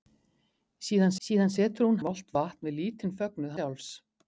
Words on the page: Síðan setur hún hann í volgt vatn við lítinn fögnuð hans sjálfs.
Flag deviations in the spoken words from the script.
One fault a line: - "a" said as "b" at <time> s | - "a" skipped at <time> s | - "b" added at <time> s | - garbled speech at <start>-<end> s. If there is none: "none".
- "síðan" added at 1.3 s
- "hann" skipped at 2.0 s
- "hans" skipped at 3.6 s